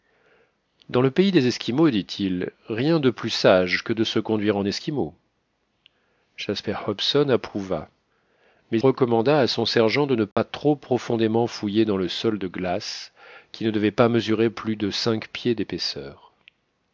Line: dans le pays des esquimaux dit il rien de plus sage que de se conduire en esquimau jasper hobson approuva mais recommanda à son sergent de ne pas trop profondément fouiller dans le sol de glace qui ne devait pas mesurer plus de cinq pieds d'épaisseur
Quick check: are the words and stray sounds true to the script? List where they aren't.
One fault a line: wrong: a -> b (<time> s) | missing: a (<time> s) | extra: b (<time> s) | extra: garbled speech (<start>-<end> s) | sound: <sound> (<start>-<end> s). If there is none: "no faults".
sound: dropout (10.3-10.4 s)